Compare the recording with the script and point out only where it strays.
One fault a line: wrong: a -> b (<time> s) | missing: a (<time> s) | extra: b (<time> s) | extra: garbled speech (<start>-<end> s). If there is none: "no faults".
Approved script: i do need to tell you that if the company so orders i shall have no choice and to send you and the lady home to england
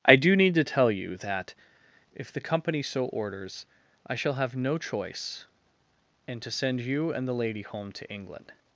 no faults